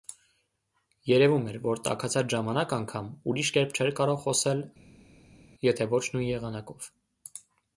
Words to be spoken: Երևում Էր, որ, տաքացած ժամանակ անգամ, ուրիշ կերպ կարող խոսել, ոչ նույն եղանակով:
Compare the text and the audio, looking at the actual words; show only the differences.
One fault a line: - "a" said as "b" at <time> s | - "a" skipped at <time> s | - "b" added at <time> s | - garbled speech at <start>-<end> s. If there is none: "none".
- "չէր" added at 3.8 s
- "եթե" added at 5.7 s